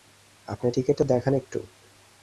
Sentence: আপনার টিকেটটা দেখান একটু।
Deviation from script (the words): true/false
false